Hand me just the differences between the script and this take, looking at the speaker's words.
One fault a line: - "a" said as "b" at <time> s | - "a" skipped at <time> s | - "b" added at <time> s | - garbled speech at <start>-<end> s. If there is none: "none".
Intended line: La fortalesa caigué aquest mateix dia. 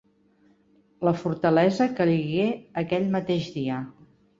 - "aquest" said as "aquell" at 2.9 s